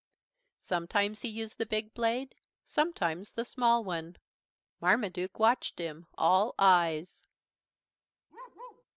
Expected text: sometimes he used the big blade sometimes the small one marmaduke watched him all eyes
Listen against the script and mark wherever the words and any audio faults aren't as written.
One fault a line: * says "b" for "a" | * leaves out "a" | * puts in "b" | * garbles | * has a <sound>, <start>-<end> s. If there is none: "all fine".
* has a bark, 8.3-8.8 s